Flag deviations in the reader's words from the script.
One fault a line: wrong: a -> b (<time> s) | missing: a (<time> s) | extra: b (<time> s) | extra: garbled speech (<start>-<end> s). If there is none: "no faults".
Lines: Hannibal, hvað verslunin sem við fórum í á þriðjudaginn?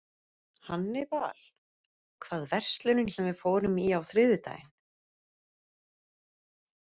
no faults